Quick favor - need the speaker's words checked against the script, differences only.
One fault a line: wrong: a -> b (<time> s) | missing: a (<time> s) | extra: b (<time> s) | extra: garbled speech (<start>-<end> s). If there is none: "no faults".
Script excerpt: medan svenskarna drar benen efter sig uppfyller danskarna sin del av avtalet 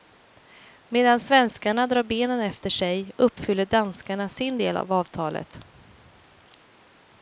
no faults